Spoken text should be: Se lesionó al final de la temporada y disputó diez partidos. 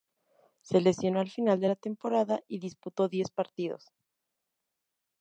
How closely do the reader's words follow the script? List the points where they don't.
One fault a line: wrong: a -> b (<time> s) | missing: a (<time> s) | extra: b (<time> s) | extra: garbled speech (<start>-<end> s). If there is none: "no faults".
no faults